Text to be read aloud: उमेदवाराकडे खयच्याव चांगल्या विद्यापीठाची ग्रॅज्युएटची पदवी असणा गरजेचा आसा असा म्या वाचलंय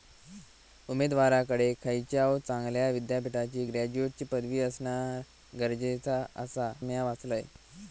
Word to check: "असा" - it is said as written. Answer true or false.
false